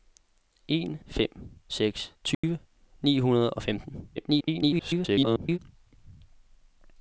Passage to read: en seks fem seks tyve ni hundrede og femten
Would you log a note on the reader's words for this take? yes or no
yes